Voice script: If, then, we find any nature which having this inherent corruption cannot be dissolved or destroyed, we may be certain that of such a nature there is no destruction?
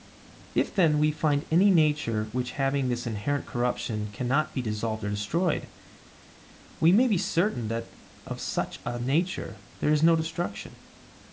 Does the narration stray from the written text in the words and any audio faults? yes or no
no